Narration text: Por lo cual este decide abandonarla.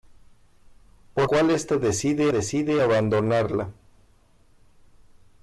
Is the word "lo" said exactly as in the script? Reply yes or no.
no